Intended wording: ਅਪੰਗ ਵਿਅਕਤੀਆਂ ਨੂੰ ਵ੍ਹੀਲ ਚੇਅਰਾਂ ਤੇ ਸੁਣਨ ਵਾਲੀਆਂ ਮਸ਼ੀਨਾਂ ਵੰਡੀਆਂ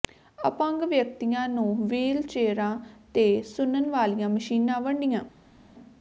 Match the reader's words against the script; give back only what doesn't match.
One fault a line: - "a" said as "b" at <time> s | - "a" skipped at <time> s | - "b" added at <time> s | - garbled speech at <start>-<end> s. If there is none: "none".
none